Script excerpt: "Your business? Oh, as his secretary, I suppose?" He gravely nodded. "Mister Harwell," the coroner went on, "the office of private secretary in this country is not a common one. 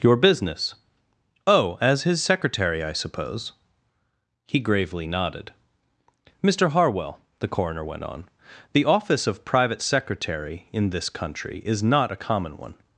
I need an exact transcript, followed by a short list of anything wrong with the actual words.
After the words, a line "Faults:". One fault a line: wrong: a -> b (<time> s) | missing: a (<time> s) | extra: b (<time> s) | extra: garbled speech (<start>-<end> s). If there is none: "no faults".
"Your business? Oh, as his secretary, I suppose?" He gravely nodded. "Mister Harwell," the coroner went on, "the office of private secretary in this country is not a common one.
Faults:
no faults